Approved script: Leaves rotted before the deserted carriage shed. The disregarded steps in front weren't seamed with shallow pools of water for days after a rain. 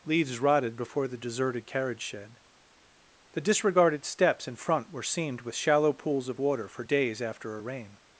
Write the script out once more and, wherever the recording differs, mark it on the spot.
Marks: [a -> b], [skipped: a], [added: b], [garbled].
Leaves rotted before the deserted carriage shed. The disregarded steps in front [weren't -> were] seamed with shallow pools of water for days after a rain.